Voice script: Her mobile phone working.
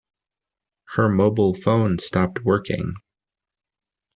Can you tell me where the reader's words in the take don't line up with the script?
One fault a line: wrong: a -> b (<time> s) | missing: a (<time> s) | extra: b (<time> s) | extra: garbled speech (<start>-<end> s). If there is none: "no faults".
extra: stopped (2.0 s)